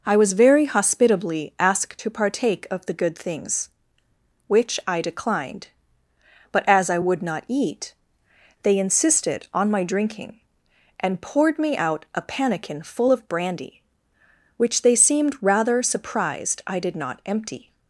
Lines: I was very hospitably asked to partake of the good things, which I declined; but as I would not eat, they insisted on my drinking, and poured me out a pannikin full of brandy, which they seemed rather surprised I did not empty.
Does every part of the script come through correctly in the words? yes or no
yes